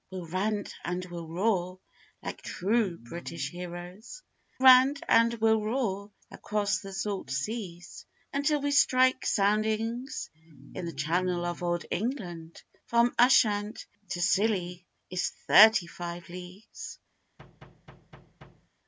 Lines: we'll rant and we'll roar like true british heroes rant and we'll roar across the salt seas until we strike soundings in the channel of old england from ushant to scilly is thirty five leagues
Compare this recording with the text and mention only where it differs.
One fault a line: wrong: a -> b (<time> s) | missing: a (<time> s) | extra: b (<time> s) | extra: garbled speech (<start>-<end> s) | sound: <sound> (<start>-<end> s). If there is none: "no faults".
sound: thud (17.4-18.7 s)